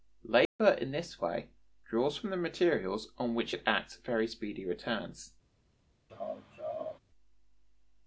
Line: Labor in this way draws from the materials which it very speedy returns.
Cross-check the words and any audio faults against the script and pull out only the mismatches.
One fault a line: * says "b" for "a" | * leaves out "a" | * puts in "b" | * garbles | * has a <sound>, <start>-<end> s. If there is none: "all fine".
* has a dropout, 0.5-0.6 s
* puts in "on"
* puts in "acts"
* has a laugh, 6.1-7.0 s